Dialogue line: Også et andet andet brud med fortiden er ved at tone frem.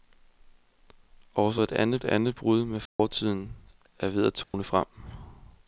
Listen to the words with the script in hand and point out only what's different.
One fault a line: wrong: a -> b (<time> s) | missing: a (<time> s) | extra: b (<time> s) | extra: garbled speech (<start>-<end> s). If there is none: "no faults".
no faults